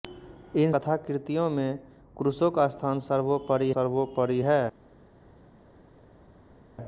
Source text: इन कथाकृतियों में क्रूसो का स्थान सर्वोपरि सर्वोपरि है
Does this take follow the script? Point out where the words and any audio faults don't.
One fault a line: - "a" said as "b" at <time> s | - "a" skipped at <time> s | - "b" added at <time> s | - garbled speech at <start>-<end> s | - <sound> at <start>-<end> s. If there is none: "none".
none